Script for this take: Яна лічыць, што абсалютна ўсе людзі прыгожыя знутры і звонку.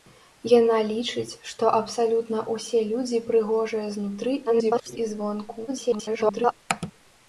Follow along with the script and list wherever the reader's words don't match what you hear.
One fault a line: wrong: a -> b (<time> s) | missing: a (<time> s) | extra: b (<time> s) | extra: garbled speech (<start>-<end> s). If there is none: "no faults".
extra: garbled speech (4.5-5.0 s)
extra: garbled speech (5.7-6.5 s)